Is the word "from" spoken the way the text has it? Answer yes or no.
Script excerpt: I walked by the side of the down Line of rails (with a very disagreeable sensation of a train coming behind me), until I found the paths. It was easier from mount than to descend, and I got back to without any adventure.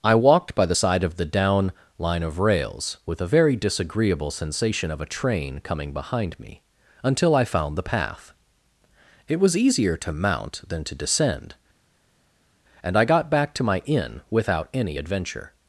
no